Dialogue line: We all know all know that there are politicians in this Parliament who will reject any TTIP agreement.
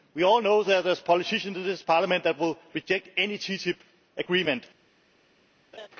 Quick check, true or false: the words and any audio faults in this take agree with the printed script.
false